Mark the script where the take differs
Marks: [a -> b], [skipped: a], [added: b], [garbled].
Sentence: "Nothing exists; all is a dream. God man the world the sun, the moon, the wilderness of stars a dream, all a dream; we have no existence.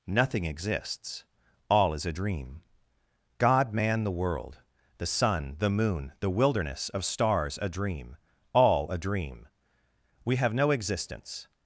"Nothing exists; all is a dream. God man the world the sun, the moon, the wilderness of stars a dream, all a dream; we have no existence.